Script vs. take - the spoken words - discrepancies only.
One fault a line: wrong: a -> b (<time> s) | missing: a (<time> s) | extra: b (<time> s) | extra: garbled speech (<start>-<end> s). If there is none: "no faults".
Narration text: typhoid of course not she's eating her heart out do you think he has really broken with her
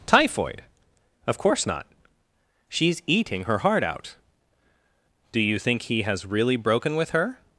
no faults